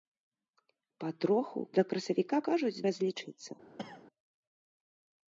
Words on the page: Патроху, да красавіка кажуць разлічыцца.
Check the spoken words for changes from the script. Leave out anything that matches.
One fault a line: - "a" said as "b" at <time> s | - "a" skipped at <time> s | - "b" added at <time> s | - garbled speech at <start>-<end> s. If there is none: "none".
none